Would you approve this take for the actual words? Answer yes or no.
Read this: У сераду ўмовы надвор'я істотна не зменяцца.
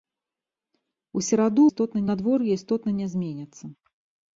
no